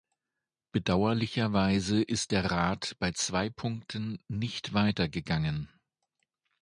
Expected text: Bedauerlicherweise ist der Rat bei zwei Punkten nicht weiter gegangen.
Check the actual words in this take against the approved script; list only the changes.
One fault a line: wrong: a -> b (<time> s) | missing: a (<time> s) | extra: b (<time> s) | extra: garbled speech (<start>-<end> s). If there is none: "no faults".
no faults